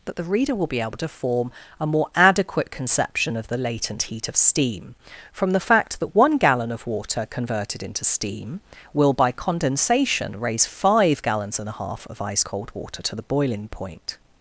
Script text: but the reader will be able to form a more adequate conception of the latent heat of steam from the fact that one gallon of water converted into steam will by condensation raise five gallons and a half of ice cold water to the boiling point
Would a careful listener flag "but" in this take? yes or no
yes